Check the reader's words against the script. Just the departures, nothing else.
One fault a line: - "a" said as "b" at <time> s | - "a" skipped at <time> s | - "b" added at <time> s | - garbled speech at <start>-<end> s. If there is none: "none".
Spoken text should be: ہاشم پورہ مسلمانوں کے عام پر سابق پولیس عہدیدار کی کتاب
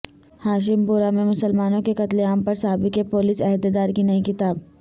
- "میں" added at 1.1 s
- "قتل" added at 1.9 s
- "نئی" added at 4.0 s